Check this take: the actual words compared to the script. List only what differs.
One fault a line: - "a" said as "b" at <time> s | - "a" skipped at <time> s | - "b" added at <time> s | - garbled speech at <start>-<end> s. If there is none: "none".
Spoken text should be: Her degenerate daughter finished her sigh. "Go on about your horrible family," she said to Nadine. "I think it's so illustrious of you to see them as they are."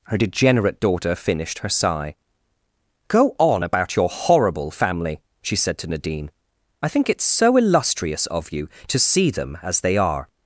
none